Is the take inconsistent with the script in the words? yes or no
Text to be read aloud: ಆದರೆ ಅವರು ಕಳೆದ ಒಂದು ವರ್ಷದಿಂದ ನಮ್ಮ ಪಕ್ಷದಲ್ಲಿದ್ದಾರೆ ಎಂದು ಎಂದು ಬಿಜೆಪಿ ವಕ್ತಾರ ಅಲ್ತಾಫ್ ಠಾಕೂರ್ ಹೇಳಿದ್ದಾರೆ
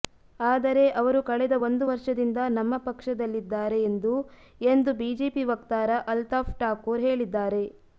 no